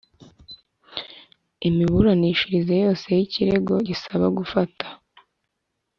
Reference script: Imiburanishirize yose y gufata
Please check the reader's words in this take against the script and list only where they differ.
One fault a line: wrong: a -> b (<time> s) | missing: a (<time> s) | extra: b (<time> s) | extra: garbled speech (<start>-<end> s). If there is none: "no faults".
extra: ikirego gisaba (3.2 s)